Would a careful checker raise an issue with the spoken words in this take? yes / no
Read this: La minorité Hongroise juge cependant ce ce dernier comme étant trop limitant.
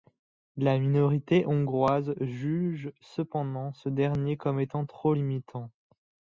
yes